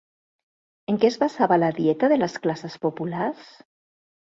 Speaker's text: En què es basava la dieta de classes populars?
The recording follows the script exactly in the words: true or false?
false